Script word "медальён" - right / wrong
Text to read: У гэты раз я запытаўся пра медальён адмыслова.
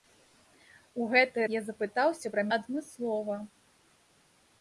wrong